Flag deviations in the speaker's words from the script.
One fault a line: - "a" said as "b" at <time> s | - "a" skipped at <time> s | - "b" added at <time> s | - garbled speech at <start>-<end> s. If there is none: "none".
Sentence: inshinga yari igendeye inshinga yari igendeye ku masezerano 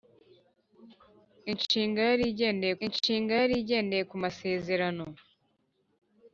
none